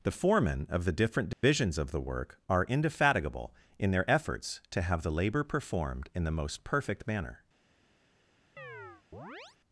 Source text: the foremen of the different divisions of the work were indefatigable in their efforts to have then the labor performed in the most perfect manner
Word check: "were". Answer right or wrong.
wrong